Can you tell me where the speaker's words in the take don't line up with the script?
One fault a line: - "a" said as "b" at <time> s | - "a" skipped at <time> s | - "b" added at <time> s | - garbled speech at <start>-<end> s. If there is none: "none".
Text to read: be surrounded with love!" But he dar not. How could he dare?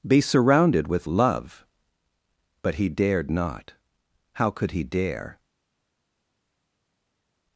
- "dar" said as "dared" at 2.9 s